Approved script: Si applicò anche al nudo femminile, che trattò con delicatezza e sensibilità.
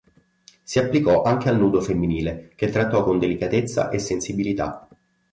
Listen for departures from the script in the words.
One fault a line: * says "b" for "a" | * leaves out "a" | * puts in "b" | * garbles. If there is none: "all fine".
all fine